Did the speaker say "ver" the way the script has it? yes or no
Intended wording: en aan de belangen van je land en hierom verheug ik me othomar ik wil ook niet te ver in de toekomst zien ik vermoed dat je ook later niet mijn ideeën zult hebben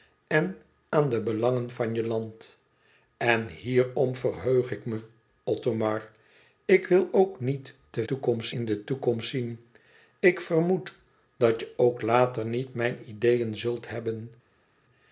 no